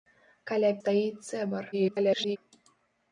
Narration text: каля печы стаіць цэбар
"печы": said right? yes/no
no